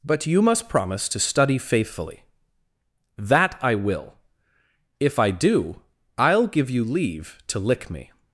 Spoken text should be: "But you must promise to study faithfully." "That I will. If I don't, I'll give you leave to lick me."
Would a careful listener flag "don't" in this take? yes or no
yes